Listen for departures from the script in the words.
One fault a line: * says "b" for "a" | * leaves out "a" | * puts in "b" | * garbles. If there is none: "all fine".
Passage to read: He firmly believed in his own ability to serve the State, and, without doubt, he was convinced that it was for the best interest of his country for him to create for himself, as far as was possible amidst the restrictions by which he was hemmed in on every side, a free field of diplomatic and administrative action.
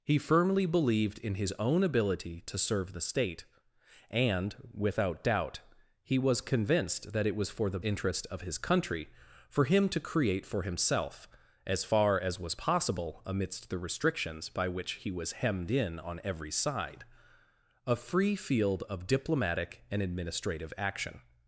* leaves out "best"